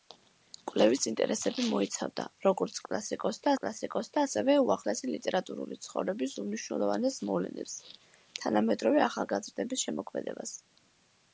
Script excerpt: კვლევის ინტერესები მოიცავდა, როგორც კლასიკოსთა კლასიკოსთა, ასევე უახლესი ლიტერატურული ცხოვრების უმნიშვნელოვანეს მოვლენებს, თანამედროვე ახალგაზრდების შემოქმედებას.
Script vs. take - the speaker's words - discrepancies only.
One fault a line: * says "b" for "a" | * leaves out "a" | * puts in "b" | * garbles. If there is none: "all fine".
all fine